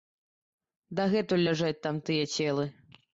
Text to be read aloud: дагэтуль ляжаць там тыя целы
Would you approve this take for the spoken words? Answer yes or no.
yes